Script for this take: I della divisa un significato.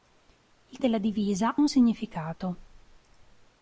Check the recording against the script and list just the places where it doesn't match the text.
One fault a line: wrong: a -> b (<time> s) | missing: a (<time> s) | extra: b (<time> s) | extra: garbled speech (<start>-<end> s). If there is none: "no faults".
no faults